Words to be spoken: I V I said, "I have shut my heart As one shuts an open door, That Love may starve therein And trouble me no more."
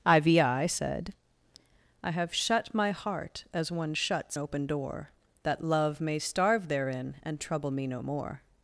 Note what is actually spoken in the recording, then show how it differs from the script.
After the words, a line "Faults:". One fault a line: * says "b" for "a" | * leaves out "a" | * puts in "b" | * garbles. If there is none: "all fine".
I V I said, "I have shut my heart As one shuts open door, That Love may starve therein And trouble me no more."
Faults:
* leaves out "an"